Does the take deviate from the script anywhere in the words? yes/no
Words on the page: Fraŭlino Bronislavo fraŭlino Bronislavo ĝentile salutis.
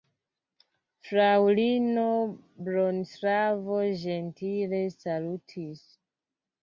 yes